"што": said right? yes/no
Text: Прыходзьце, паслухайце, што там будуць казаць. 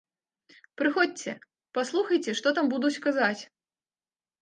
yes